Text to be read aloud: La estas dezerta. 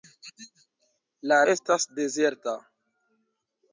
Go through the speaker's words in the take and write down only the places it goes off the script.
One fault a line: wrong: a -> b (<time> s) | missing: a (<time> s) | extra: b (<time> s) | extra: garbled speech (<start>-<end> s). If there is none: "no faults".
no faults